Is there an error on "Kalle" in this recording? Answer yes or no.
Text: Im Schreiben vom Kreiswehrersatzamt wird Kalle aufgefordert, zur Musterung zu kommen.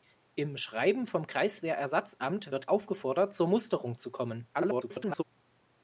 yes